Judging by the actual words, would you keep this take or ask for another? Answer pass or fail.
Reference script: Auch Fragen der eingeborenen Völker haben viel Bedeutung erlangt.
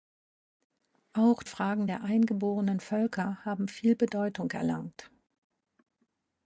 pass